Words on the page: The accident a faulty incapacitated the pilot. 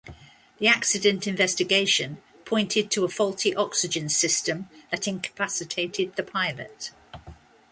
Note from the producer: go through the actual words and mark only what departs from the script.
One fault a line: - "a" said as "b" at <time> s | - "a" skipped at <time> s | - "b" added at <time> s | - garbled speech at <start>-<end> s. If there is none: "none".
- "investigation pointed to" added at 1.3 s
- "oxygen system that" added at 3.5 s